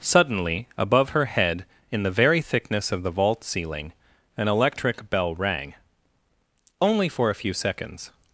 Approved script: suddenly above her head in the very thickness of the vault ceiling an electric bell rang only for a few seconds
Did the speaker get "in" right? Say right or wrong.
right